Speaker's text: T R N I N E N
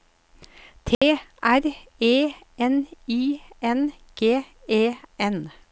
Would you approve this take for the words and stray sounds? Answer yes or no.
no